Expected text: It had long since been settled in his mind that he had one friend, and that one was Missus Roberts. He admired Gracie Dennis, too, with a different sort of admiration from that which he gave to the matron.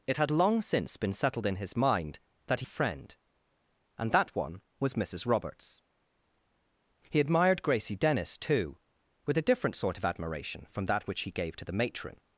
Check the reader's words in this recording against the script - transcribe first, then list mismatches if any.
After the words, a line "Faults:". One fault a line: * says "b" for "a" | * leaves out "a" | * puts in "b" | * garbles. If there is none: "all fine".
It had long since been settled in his mind that he friend, and that one was Missus Roberts. He admired Gracie Dennis, too, with a different sort of admiration from that which he gave to the matron.
Faults:
* leaves out "had one"